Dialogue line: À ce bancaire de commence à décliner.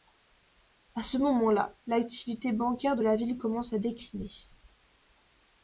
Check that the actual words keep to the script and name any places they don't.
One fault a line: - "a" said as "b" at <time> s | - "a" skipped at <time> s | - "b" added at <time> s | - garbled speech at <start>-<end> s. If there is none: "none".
- "moment là l'activité" added at 1.2 s
- "la ville" added at 3.0 s